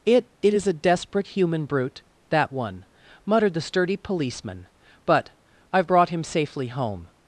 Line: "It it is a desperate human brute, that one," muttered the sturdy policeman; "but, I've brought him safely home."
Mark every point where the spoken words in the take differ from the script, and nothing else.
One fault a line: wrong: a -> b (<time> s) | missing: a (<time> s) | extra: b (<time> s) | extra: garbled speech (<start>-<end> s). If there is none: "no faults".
no faults